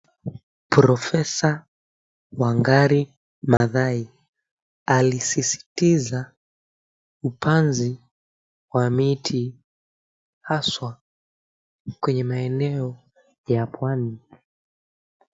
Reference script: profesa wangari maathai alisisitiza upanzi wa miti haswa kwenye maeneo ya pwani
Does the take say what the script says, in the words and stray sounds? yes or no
no